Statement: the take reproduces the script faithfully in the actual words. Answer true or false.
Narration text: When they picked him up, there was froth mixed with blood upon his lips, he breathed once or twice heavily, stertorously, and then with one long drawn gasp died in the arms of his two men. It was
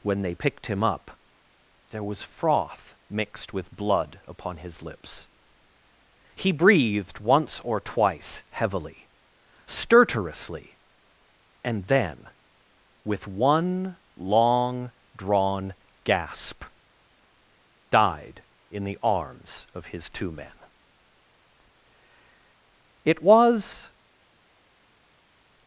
true